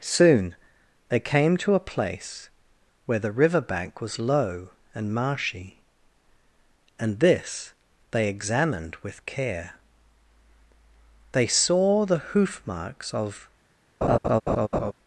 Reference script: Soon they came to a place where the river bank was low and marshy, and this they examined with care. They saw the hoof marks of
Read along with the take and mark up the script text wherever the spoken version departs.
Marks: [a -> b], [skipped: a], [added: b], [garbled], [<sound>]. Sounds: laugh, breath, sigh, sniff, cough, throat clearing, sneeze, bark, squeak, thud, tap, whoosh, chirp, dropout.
Soon they came to a place where the river bank was low and marshy, and this they examined with care. They saw the hoof marks of [laugh]